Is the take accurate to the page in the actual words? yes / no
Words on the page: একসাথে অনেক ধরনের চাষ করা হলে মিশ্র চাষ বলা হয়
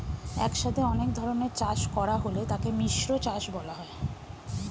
no